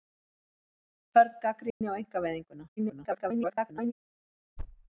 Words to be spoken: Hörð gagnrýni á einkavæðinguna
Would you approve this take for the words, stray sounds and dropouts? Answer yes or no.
no